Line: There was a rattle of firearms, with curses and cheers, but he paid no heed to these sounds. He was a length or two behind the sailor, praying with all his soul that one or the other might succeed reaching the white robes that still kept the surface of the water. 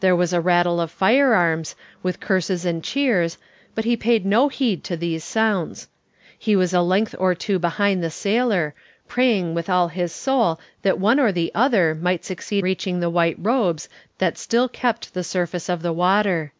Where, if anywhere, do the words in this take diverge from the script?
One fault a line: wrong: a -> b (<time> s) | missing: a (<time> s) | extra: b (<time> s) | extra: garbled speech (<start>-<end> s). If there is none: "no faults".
no faults